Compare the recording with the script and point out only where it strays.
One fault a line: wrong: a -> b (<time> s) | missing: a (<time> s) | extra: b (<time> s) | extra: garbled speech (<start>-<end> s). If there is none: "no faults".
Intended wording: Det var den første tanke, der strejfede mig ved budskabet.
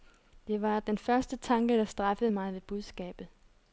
no faults